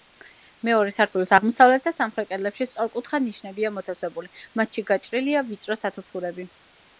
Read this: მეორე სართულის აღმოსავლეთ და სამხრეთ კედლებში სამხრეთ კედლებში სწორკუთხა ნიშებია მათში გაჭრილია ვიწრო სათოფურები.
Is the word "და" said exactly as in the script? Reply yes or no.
yes